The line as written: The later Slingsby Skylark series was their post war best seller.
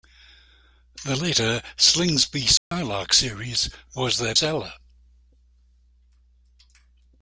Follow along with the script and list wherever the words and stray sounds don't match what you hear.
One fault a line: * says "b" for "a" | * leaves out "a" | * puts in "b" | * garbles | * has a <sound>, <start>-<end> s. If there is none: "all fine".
* has a dropout, 2.6-2.7 s
* leaves out "post war best"